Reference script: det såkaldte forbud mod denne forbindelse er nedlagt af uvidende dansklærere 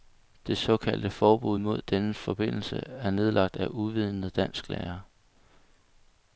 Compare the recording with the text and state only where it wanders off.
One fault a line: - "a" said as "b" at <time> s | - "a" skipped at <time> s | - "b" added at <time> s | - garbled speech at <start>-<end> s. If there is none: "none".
none